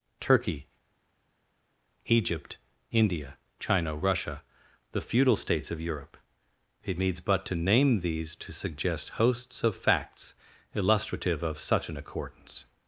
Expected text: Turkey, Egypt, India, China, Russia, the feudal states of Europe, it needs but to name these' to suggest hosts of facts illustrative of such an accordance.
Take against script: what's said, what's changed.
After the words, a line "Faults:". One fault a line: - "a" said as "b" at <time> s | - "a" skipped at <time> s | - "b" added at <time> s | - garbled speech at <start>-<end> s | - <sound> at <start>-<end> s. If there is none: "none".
Turkey, Egypt, India, China, Russia, the feudal states of Europe, it needs but to name these' to suggest hosts of facts illustrative of such an accordance.
Faults:
none